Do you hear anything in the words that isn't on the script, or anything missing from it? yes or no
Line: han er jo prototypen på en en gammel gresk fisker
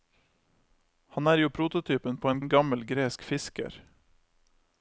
no